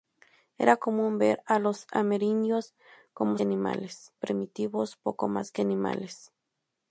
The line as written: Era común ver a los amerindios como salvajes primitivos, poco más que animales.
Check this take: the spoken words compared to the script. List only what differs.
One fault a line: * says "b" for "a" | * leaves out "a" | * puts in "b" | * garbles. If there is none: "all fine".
* says "animales" for "salvajes"